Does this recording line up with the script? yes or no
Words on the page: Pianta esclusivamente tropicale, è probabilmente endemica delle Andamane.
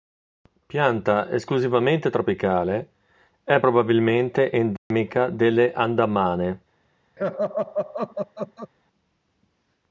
yes